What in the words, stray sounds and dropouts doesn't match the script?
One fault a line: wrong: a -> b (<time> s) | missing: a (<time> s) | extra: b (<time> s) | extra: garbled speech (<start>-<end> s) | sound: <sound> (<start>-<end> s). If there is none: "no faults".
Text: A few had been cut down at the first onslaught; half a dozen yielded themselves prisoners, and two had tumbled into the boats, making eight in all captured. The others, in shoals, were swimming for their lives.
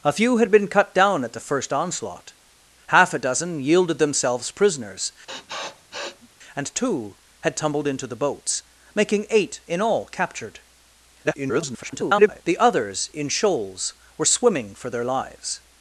sound: sniff (5.3-6.3 s)
extra: garbled speech (11.2-12.4 s)